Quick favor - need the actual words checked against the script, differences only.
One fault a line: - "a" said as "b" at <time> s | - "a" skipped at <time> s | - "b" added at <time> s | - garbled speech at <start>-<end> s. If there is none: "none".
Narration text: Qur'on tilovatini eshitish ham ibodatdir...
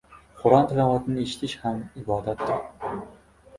none